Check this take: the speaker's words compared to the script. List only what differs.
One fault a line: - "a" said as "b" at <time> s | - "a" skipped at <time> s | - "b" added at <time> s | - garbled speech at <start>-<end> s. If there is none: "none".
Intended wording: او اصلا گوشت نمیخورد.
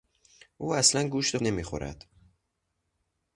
none